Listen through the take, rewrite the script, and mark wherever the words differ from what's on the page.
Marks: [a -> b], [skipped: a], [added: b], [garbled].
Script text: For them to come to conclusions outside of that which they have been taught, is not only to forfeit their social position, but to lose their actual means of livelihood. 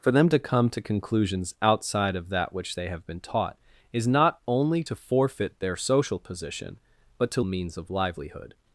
For them to come to conclusions outside of that which they have been taught, is not only to forfeit their social position, but to [skipped: lose their actual] means of livelihood.